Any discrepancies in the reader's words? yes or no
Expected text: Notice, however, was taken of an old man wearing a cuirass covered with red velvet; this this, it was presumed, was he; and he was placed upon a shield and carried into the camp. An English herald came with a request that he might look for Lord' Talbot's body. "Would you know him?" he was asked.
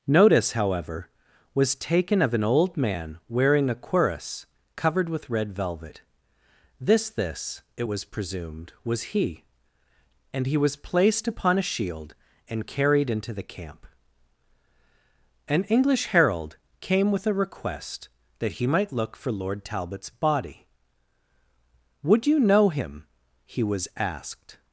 no